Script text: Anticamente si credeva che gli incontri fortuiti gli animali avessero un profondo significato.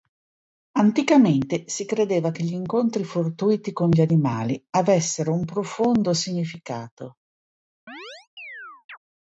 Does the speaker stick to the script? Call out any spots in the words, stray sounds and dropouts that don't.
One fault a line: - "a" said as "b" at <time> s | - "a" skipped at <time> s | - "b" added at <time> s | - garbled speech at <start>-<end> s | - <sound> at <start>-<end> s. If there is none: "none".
- "con" added at 3.7 s
- chirp at 7.9-9.0 s